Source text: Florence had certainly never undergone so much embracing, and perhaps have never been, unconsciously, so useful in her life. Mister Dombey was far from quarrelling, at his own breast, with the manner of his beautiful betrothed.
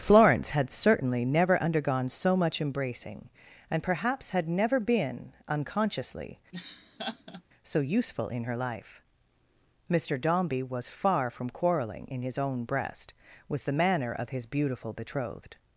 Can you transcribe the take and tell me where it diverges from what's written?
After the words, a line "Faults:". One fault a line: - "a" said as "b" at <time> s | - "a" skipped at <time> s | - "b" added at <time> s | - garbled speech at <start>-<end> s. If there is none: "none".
Florence had certainly never undergone so much embracing, and perhaps had never been, unconsciously, so useful in her life. Mister Dombey was far from quarrelling, in his own breast, with the manner of his beautiful betrothed.
Faults:
- "have" said as "had" at 4.3 s
- "at" said as "in" at 12.1 s